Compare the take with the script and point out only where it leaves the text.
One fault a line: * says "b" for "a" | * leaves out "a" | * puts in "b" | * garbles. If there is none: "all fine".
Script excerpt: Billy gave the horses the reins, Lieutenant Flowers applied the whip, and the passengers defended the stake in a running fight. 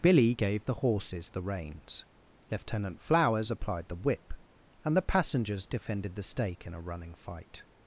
all fine